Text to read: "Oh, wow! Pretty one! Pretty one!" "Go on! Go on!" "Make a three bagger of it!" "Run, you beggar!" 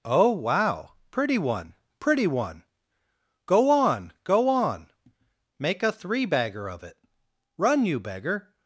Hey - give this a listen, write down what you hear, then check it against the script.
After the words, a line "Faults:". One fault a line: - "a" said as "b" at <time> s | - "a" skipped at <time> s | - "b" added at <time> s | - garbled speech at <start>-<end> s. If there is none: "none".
"Oh, wow! Pretty one! Pretty one!" "Go on! Go on!" "Make a three bagger of it!" "Run, you beggar!"
Faults:
none